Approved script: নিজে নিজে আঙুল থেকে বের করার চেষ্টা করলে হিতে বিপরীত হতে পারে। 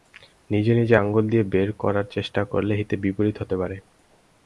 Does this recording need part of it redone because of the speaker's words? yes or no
yes